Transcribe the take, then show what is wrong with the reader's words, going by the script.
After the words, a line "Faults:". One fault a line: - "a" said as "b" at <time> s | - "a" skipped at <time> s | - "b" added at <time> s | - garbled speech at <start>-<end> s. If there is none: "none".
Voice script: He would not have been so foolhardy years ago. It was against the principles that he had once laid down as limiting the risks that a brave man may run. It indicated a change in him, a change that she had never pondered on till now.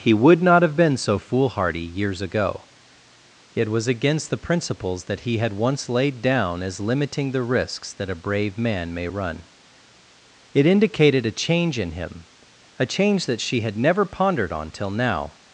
He would not have been so foolhardy years ago. It was against the principles that he had once laid down as limiting the risks that a brave man may run. It indicated a change in him, a change that she had never pondered on till now.
Faults:
none